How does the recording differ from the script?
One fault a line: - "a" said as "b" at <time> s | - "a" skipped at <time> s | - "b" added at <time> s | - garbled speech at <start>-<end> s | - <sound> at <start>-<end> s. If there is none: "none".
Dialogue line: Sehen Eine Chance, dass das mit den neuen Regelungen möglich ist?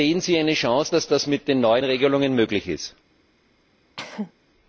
- "Sie" added at 0.2 s
- cough at 4.0-4.3 s